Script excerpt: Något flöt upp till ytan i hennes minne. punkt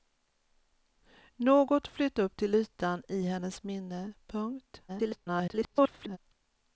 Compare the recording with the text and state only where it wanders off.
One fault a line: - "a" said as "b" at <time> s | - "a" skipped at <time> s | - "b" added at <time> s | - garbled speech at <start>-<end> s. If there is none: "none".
- garbled speech at 4.9-6.2 s